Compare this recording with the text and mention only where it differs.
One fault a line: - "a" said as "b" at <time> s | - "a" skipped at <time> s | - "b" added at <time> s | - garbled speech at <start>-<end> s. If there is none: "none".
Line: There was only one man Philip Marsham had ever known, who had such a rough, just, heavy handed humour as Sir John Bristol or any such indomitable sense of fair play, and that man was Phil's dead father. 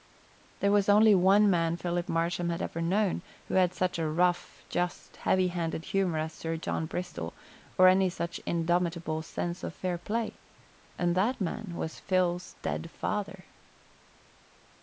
none